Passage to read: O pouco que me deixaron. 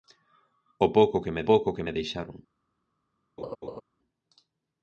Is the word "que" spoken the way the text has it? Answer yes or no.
yes